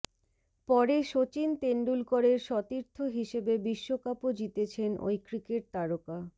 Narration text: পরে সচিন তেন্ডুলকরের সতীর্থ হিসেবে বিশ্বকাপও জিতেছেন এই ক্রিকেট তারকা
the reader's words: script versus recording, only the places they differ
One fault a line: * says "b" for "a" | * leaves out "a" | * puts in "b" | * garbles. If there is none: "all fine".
* says "ওই" for "এই"